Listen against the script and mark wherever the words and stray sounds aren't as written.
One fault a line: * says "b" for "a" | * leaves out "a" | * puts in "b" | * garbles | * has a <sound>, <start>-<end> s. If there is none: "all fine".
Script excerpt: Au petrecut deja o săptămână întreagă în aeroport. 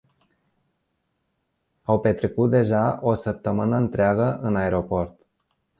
all fine